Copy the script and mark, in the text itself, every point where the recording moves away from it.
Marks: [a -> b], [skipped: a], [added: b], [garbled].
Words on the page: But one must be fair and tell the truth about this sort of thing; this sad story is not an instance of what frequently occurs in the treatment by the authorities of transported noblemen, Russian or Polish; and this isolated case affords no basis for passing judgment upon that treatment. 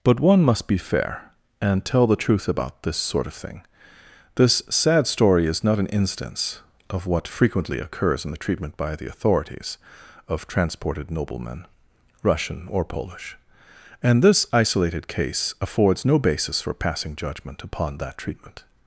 But one must be fair and tell the truth about this sort of thing; this sad story is not an instance of what frequently occurs in the treatment by the authorities of transported noblemen, Russian or Polish; and this isolated case affords no basis for passing judgment upon that treatment.